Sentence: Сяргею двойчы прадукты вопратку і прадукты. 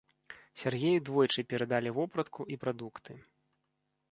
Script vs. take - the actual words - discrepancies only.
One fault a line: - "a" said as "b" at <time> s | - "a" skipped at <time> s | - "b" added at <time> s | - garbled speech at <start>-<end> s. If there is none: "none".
- "прадукты" said as "перадалі" at 1.5 s